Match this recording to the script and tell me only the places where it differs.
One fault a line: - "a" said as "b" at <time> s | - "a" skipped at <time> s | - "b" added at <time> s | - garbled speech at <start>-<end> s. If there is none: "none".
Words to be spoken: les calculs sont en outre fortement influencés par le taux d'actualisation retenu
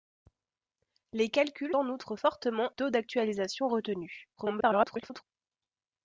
- "sont" skipped at 1.8 s
- "influencés par le" skipped at 2.7 s
- garbled speech at 4.4-5.2 s